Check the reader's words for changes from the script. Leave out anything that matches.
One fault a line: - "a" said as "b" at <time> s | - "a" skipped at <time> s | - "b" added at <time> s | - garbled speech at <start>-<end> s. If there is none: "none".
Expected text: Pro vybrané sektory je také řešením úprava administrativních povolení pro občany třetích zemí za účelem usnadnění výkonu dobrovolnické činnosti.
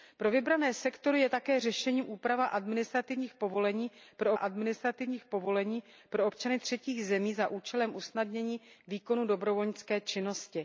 - "administrativních povolení pro" added at 4.3 s